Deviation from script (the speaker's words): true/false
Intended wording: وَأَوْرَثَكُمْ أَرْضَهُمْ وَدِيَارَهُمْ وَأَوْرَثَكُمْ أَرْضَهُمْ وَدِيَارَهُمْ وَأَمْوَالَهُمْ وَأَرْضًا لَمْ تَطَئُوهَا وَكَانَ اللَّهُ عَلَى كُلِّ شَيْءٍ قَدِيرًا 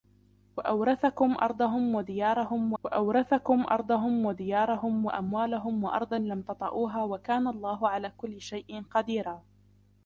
false